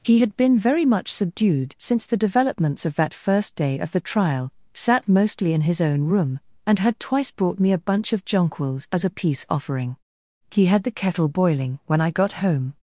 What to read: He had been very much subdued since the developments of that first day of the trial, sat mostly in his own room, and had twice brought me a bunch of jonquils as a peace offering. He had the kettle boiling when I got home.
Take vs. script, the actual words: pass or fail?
pass